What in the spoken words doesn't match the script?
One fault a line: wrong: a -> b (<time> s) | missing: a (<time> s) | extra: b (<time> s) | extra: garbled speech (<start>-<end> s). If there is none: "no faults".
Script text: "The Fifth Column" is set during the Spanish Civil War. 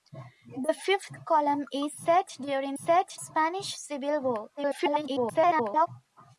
wrong: the -> set (2.8 s)
extra: garbled speech (4.6-5.9 s)